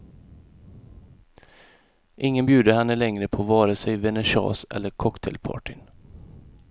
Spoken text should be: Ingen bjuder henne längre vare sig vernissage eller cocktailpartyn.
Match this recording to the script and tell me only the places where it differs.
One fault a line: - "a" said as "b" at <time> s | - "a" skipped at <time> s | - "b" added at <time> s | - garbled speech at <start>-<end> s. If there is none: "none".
- "på" added at 3.3 s